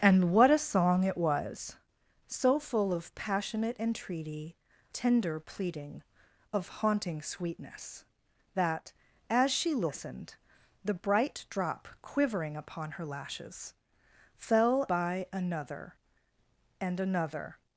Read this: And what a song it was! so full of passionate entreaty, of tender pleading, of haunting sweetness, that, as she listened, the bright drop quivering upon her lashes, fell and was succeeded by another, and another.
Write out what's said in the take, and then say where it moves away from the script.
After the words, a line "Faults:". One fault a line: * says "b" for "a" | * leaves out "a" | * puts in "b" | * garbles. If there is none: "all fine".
And what a song it was! so full of passionate entreaty, tender pleading, of haunting sweetness, that, as she listened, the bright drop quivering upon her lashes, fell by another, and another.
Faults:
* leaves out "of"
* leaves out "and was succeeded"